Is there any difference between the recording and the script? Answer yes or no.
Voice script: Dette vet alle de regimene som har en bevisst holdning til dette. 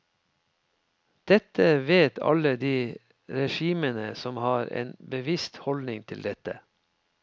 no